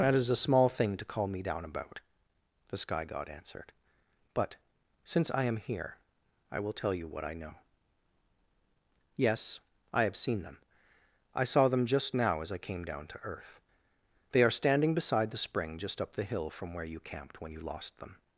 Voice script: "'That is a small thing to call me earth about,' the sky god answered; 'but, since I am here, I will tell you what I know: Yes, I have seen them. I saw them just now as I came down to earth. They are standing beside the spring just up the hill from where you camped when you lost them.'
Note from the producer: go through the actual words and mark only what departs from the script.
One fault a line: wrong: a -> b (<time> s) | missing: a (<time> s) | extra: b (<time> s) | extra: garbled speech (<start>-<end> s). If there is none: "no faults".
wrong: earth -> down (1.4 s)